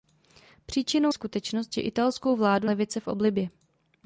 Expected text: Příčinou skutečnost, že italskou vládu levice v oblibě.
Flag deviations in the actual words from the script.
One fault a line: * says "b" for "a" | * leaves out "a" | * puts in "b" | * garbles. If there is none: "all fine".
all fine